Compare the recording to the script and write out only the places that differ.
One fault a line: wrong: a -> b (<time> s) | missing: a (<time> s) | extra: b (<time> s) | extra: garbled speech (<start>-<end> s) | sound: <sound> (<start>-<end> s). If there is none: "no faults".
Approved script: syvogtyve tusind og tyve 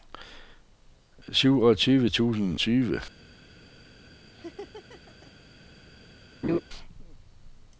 missing: og (2.6 s)
sound: laugh (4.3-5.3 s)
sound: laugh (6.4-6.6 s)